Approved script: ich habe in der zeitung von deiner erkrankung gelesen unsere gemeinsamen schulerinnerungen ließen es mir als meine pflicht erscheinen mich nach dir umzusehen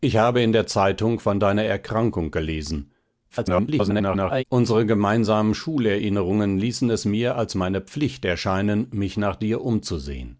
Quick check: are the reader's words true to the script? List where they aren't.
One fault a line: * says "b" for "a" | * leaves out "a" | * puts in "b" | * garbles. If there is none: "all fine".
* garbles